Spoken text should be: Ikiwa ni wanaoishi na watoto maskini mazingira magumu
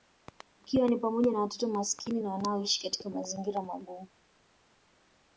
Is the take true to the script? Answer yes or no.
no